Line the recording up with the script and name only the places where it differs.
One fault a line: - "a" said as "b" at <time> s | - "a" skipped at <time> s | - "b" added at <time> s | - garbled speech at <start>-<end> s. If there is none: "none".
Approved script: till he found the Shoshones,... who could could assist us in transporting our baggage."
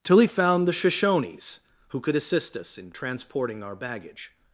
- "could" skipped at 2.1 s